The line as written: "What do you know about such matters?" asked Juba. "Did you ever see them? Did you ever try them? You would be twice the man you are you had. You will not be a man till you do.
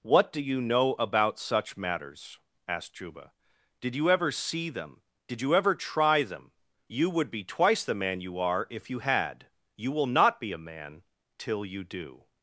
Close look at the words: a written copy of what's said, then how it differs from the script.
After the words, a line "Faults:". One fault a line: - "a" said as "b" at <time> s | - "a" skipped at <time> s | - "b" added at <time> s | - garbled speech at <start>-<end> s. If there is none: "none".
"What do you know about such matters?" asked Juba. "Did you ever see them? Did you ever try them? You would be twice the man you are if you had. You will not be a man till you do.
Faults:
- "if" added at 8.7 s